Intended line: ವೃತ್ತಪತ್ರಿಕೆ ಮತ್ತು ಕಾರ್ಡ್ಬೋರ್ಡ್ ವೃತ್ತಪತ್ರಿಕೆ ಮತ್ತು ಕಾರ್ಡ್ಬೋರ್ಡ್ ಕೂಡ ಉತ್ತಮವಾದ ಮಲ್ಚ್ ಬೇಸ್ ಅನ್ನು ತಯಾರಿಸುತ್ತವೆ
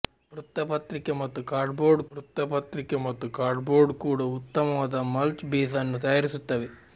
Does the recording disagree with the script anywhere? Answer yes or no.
no